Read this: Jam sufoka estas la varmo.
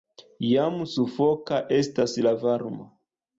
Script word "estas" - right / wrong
right